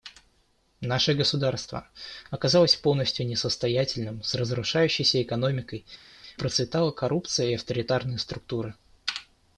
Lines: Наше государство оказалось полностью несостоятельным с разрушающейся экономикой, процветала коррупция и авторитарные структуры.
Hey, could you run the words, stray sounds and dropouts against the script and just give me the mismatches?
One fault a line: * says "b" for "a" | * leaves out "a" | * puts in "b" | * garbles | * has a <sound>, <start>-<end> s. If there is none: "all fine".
all fine